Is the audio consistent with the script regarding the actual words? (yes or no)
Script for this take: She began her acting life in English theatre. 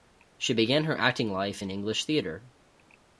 yes